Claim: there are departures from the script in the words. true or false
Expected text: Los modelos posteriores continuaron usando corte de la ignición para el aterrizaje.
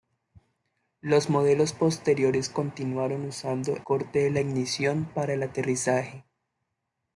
false